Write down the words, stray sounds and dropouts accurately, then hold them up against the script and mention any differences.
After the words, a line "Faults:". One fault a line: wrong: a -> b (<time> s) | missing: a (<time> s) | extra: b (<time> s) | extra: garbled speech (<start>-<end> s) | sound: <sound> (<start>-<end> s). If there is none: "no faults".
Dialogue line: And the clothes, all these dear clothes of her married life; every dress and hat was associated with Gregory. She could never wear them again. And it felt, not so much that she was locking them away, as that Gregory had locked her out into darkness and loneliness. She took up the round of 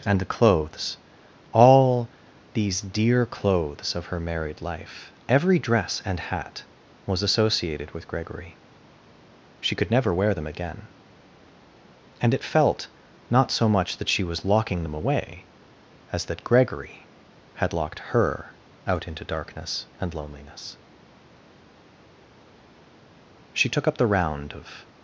And the clothes, all these dear clothes of her married life; every dress and hat was associated with Gregory. She could never wear them again. And it felt, not so much that she was locking them away, as that Gregory had locked her out into darkness and loneliness. She took up the round of
Faults:
no faults